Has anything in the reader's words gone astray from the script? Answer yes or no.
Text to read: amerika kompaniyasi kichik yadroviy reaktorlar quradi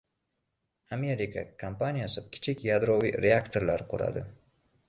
no